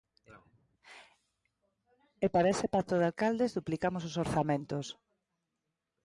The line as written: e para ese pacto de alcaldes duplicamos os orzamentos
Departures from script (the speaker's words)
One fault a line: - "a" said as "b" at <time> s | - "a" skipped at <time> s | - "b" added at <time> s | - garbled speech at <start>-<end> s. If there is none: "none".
none